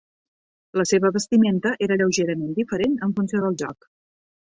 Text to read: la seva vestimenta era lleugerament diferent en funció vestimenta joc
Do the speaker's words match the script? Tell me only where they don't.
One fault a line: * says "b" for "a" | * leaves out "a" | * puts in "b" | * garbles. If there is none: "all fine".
* says "del" for "vestimenta"